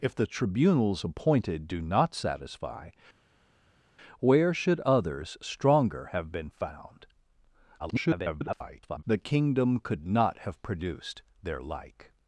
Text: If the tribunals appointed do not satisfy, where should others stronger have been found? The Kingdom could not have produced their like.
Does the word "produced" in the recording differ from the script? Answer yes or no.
no